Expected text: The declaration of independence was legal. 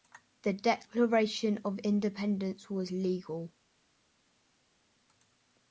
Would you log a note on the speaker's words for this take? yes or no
no